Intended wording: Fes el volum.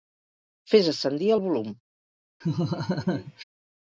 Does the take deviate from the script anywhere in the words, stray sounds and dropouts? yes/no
yes